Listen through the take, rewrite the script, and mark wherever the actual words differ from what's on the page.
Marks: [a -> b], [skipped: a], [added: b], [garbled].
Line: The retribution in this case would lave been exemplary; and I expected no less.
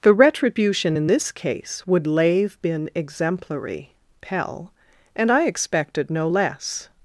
The retribution in this case would lave been exemplary; [added: pell] and I expected no less.